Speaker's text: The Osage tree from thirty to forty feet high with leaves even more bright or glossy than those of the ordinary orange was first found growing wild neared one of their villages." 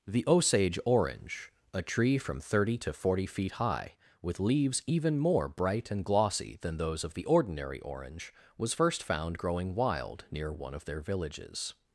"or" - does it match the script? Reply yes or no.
no